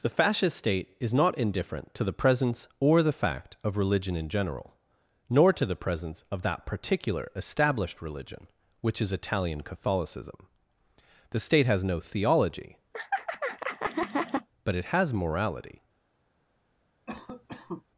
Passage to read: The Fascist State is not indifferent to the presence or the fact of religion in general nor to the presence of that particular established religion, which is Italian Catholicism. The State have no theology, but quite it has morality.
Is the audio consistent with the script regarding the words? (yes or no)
no